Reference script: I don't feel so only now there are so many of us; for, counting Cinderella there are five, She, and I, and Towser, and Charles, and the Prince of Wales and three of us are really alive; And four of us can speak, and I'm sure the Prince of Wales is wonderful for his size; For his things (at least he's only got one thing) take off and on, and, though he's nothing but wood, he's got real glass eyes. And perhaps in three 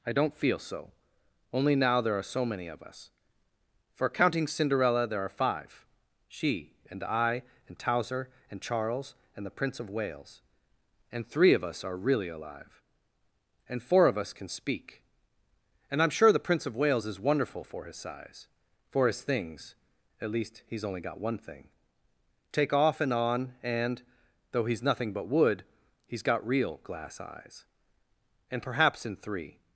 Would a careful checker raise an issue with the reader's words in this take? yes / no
no